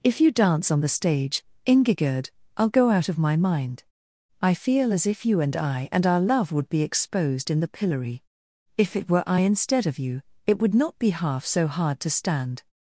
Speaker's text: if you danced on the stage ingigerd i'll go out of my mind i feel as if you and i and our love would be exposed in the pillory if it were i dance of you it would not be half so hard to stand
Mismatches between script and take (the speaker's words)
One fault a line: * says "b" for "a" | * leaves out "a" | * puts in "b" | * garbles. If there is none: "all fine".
* says "dance" for "danced"
* says "instead" for "dance"